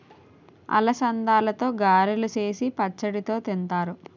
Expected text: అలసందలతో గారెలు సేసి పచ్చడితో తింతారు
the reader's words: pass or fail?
pass